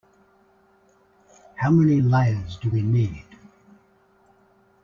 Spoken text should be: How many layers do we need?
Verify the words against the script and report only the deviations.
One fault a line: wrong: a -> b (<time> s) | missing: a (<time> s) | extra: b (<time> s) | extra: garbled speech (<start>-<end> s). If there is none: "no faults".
no faults